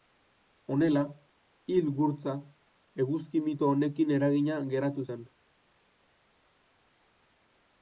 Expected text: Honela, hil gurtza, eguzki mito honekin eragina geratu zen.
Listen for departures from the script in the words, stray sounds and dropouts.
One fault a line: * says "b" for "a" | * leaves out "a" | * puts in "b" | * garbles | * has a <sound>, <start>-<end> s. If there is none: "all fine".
all fine